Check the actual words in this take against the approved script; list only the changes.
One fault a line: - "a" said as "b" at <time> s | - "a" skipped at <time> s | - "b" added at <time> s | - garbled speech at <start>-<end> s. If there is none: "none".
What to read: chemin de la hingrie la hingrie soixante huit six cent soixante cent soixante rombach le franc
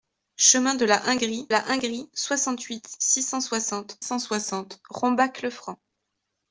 none